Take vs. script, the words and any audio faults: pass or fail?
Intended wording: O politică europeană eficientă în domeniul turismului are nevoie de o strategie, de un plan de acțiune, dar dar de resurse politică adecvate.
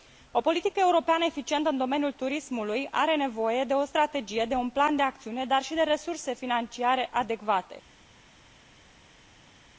fail